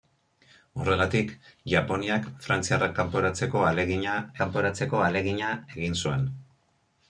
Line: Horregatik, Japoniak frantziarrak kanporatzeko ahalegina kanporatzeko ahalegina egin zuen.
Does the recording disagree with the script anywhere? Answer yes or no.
no